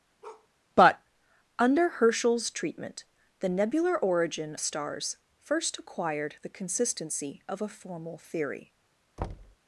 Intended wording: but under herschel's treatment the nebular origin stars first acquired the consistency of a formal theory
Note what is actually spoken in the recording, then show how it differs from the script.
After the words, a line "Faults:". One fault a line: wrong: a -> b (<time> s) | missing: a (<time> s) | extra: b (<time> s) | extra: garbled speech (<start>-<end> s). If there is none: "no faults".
but under herschel's treatment the nebular origin stars first acquired the consistency of a formal theory
Faults:
no faults